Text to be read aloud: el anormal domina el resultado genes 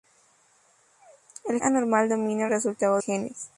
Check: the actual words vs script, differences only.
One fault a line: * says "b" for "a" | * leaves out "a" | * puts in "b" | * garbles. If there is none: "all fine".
all fine